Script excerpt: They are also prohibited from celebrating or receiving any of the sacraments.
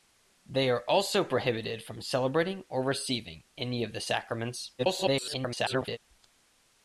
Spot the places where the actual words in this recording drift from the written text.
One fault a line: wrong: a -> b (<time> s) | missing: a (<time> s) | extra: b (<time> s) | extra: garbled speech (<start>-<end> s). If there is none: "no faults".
extra: garbled speech (4.8-6.0 s)